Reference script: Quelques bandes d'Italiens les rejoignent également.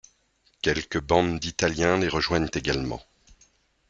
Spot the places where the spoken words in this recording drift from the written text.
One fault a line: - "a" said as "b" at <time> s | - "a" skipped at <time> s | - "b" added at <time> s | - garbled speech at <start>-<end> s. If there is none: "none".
none